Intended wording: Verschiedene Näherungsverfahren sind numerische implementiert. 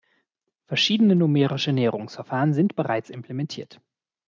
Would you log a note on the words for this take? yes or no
yes